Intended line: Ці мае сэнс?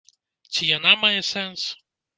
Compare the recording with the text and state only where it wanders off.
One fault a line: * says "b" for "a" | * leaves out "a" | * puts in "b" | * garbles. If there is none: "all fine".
* puts in "яна"